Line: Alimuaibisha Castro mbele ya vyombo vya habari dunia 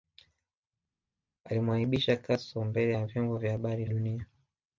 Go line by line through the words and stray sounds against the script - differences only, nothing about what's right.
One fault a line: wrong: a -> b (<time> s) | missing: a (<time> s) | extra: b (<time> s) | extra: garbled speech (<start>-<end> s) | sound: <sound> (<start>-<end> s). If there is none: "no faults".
no faults